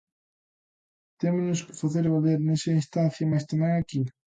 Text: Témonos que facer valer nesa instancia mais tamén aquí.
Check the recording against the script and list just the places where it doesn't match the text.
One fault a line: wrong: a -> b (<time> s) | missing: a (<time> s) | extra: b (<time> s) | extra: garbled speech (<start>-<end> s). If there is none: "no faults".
no faults